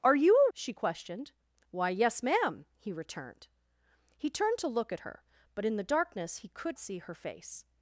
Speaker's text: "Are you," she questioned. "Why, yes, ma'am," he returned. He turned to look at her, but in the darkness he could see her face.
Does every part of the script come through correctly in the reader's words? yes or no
yes